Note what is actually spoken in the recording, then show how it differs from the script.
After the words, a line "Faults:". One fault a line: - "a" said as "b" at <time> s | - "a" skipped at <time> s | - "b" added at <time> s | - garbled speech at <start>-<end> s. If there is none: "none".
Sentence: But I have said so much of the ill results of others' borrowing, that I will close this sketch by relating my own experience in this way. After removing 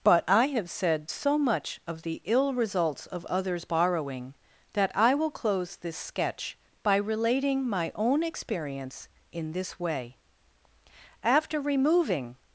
But I have said so much of the ill results of others' borrowing, that I will close this sketch by relating my own experience in this way. After removing
Faults:
none